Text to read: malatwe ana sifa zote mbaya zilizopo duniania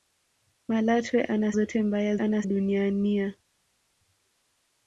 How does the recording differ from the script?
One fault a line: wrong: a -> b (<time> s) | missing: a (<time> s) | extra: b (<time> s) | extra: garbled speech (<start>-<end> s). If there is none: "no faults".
missing: sifa (1.5 s)
wrong: zilizopo -> ana (2.2 s)